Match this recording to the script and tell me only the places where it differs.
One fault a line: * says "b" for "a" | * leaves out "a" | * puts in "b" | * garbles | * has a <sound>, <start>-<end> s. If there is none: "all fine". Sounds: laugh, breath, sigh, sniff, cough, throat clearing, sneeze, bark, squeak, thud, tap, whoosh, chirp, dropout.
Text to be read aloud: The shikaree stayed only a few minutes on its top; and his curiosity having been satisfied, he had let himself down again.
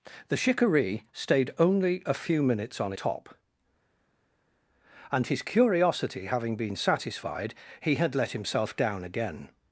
* leaves out "its"